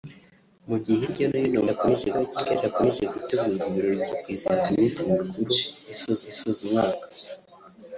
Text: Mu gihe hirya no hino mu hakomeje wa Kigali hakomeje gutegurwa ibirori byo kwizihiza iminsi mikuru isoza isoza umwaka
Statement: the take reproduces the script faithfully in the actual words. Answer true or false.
true